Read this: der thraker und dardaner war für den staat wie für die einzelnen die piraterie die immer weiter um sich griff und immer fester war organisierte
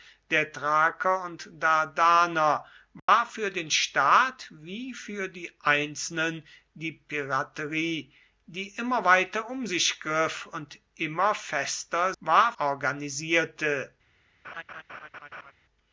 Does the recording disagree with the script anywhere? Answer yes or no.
no